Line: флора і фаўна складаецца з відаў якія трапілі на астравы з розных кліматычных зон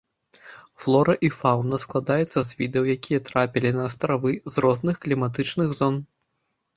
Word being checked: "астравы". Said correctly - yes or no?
yes